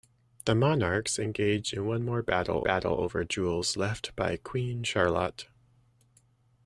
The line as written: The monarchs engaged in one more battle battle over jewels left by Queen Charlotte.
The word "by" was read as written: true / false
true